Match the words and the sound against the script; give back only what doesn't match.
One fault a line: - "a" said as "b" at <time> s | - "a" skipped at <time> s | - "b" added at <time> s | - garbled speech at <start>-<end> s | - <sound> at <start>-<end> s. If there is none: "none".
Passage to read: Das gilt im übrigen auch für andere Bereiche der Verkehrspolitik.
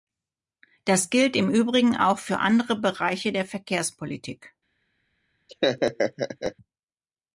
- laugh at 5.5-6.6 s